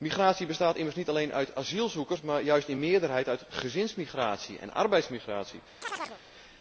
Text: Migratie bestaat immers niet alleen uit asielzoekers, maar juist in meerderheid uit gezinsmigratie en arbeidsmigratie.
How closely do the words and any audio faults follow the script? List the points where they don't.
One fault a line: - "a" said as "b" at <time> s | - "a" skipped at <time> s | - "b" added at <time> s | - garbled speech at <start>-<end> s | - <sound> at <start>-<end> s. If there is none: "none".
- chirp at 5.8-6.2 s